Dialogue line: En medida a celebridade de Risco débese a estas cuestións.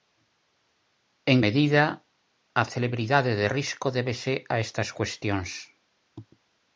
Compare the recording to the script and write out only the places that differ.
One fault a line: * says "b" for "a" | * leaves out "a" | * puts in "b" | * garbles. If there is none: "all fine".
all fine